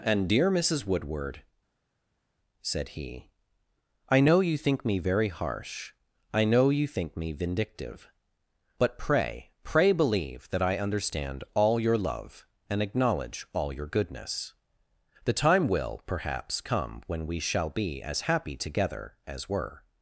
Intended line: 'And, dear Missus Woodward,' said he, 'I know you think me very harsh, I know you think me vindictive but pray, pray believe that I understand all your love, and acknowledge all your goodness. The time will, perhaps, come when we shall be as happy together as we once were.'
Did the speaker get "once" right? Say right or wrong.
wrong